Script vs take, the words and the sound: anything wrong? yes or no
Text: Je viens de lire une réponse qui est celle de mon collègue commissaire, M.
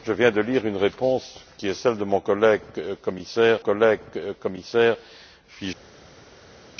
yes